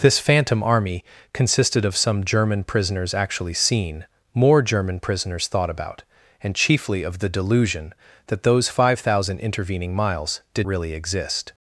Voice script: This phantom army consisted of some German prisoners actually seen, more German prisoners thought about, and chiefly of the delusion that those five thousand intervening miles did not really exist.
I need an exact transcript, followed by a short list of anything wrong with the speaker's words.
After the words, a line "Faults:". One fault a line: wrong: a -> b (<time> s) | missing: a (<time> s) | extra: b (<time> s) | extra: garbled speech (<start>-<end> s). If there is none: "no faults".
This phantom army consisted of some German prisoners actually seen, more German prisoners thought about, and chiefly of the delusion that those five thousand intervening miles did really exist.
Faults:
missing: not (10.7 s)